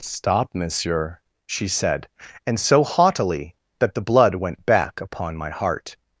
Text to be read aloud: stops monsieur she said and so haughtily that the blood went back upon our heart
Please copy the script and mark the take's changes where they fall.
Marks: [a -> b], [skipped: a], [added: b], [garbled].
[stops -> stop] monsieur she said and so haughtily that the blood went back upon [our -> my] heart